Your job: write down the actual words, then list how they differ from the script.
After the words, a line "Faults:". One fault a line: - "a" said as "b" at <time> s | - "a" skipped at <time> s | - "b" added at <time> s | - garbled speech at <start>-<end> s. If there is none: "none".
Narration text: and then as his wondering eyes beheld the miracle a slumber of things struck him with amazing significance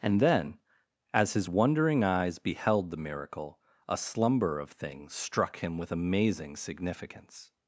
and then as his wondering eyes beheld the miracle a slumber of things struck him with amazing significance
Faults:
none